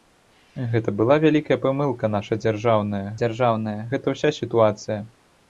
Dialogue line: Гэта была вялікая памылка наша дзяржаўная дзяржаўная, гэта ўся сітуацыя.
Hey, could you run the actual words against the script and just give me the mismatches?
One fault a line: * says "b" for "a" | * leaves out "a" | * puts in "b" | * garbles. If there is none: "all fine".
all fine